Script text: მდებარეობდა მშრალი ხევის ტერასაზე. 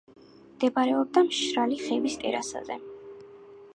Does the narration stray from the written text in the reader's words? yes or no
no